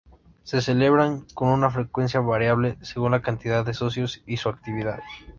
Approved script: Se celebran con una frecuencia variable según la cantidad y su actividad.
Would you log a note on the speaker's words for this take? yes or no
yes